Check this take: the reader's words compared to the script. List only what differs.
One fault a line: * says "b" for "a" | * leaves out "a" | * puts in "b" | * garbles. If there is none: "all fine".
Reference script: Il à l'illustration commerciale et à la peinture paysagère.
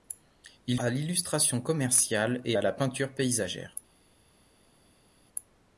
all fine